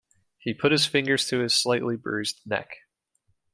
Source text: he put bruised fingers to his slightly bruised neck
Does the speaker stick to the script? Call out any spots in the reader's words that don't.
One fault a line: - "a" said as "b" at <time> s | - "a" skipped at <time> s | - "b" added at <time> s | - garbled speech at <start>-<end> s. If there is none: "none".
- "bruised" said as "his" at 0.7 s